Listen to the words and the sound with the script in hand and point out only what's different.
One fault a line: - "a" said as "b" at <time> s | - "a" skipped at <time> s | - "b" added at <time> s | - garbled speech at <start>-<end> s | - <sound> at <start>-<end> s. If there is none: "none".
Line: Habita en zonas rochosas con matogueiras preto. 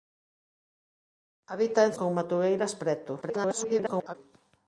- "zonas rochosas" skipped at 1.9 s
- garbled speech at 3.2-4.2 s